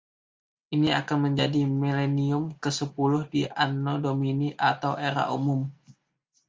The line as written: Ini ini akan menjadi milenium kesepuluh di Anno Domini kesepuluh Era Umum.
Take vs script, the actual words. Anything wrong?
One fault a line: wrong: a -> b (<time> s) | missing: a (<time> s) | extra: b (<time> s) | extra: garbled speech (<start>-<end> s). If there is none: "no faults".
missing: ini (1.0 s)
wrong: kesepuluh -> atau (4.6 s)